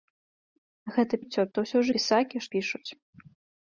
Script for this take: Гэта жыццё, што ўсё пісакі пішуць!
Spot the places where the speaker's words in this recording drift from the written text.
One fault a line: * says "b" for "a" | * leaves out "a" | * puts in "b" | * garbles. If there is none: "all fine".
all fine